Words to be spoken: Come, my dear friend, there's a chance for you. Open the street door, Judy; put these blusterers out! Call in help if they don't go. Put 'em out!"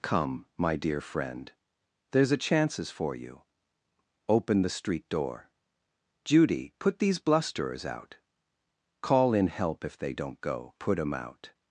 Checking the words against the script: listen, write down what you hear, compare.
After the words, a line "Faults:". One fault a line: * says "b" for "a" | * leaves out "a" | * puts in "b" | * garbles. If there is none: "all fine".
Come, my dear friend, there's a chances for you. Open the street door, Judy; put these blusterers out! Call in help if they don't go. Put 'em out!"
Faults:
* says "chances" for "chance"